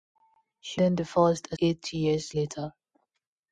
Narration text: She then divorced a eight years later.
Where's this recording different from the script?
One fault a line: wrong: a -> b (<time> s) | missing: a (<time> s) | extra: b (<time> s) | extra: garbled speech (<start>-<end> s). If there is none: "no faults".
no faults